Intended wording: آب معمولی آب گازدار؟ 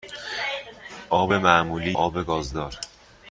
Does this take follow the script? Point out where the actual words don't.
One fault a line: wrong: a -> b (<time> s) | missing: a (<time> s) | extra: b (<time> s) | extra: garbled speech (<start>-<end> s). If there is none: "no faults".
no faults